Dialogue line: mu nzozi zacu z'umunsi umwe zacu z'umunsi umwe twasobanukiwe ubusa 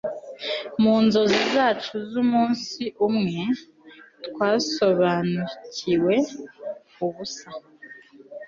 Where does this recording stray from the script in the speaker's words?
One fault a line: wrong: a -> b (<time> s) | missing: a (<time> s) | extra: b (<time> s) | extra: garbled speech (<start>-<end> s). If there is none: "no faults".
missing: zacu z'umunsi umwe (3.4 s)